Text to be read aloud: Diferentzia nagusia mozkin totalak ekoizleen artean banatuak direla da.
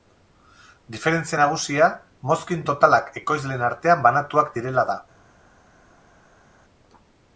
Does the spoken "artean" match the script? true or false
true